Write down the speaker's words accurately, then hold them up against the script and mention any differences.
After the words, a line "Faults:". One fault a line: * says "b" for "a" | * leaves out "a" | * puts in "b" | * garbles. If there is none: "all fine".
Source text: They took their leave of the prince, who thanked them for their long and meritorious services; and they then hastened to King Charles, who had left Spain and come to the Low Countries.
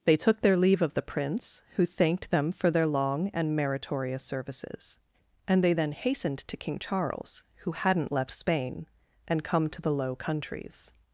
They took their leave of the prince, who thanked them for their long and meritorious services; and they then hastened to King Charles, who hadn't left Spain and come to the Low Countries.
Faults:
* says "hadn't" for "had"